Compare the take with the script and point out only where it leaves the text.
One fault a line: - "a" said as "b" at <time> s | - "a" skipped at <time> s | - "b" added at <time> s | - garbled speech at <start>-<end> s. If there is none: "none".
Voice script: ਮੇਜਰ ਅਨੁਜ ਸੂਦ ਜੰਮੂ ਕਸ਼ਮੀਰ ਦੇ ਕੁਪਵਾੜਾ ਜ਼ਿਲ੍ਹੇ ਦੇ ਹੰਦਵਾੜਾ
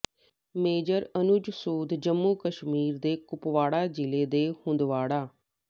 none